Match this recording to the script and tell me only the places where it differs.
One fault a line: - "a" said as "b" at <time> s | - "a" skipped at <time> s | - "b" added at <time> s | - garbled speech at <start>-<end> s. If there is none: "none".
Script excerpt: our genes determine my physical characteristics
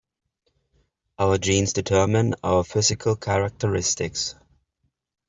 - "my" said as "our" at 2.4 s